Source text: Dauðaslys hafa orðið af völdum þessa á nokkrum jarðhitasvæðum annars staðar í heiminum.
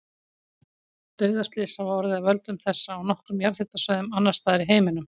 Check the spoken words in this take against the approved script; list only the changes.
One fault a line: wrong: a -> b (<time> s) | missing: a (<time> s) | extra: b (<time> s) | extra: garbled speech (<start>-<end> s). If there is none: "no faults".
no faults